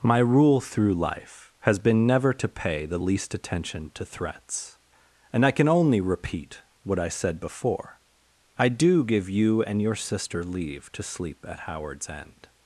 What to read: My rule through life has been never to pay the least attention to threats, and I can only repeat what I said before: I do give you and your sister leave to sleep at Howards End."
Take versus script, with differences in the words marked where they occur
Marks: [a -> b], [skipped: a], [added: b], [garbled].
My rule through life has been never to pay the least attention to threats, and I can only repeat what I said before: I do give you and your sister leave to sleep at Howards End."